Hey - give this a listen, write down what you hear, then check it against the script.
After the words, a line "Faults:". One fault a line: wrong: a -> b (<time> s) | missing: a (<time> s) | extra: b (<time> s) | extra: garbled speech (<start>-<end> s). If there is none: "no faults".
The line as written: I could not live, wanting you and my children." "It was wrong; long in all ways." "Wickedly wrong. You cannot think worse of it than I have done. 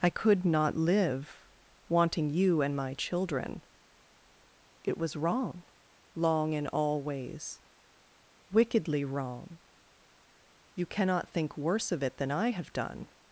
I could not live, wanting you and my children." "It was wrong; long in all ways." "Wickedly wrong. You cannot think worse of it than I have done.
Faults:
no faults